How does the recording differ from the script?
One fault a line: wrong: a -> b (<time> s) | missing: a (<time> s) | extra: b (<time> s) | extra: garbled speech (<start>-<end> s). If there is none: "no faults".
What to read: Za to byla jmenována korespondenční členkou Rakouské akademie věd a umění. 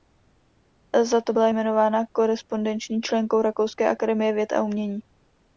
no faults